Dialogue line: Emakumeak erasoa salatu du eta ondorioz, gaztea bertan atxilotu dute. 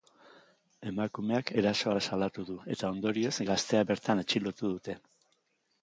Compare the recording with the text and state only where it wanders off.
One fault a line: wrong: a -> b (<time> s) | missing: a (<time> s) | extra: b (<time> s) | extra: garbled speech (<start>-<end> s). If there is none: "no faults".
no faults